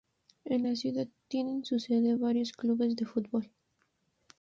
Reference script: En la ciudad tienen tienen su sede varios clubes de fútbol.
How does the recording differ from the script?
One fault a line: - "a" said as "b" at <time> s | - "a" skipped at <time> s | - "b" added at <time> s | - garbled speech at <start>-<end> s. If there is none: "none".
- "tienen" skipped at 1.7 s